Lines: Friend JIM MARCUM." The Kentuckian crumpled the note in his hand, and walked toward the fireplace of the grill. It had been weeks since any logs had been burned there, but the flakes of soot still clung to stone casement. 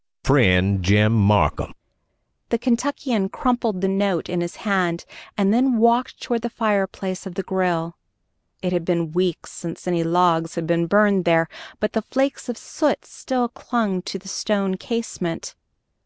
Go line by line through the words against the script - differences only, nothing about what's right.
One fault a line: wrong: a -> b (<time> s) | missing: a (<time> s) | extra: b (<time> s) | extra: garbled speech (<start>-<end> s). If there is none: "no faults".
extra: then (5.5 s)
extra: the (14.2 s)